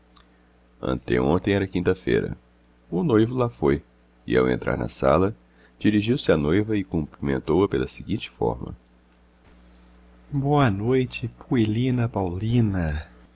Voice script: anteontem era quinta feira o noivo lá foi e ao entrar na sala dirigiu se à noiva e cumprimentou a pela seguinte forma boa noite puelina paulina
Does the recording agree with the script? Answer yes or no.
yes